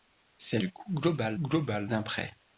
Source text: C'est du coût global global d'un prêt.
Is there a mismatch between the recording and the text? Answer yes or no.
no